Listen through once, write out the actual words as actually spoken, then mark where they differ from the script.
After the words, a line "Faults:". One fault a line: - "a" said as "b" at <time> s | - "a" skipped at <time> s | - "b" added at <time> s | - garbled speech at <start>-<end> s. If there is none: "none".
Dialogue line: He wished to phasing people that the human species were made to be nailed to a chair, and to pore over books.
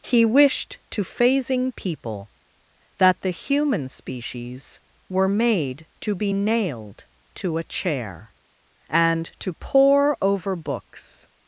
He wished to phasing people that the human species were made to be nailed to a chair, and to pore over books.
Faults:
none